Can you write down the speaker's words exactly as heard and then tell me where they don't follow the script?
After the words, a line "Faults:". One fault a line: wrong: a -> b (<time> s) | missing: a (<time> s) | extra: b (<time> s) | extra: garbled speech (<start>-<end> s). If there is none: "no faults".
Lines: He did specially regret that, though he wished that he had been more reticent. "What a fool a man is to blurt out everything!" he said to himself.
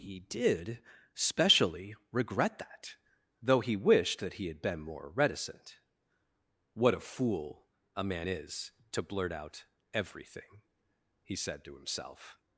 He did specially regret that, though he wished that he had been more reticent. "What a fool a man is to blurt out everything!" he said to himself.
Faults:
no faults